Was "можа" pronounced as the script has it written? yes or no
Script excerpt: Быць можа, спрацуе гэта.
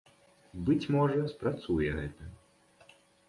yes